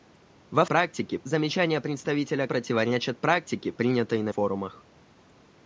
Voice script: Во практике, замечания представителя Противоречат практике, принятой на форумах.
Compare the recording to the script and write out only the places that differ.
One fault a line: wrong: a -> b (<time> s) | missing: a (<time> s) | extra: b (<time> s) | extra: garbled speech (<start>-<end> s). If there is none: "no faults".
no faults